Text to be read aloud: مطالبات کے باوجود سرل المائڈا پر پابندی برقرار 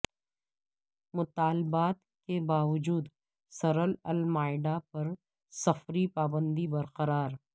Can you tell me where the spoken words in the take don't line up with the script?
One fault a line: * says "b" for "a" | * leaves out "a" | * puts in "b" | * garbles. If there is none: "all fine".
* puts in "سفری"